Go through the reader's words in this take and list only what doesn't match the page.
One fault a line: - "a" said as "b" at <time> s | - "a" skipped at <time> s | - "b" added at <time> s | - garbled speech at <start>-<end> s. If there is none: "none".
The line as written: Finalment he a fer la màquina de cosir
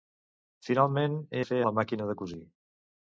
none